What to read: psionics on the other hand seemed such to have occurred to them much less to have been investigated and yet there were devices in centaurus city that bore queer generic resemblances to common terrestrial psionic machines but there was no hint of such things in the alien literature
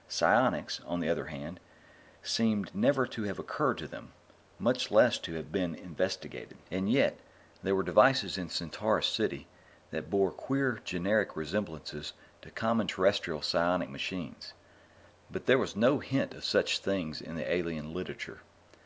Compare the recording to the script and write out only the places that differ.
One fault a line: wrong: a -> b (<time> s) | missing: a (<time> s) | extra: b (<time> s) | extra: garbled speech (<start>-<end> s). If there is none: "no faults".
wrong: such -> never (2.7 s)